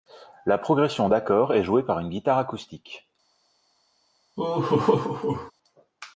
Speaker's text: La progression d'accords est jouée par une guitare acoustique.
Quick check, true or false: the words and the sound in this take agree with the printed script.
false